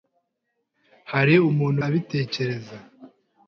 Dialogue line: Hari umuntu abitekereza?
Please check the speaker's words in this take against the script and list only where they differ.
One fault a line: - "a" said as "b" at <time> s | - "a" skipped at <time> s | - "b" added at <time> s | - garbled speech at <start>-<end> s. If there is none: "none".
none